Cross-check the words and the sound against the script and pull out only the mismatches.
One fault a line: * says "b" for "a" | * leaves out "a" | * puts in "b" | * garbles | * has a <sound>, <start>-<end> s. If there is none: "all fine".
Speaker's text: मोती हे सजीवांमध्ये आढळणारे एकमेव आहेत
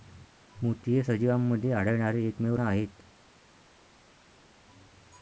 all fine